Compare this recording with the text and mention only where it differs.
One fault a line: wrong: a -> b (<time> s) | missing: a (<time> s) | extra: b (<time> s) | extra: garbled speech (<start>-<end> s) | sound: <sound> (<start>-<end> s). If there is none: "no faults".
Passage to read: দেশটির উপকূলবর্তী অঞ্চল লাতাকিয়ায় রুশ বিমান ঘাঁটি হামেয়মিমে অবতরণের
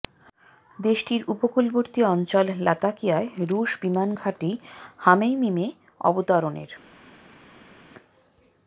no faults